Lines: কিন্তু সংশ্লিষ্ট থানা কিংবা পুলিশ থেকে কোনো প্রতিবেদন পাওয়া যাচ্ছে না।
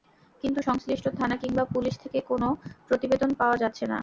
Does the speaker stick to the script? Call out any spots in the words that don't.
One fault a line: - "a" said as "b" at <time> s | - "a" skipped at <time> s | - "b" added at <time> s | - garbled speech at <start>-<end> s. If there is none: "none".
none